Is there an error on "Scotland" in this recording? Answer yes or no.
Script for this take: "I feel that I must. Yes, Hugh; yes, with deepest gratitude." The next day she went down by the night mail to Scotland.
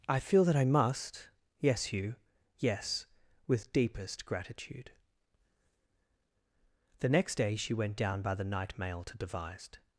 yes